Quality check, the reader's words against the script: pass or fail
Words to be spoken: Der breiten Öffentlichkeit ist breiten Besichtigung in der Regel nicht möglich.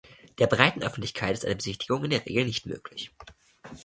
fail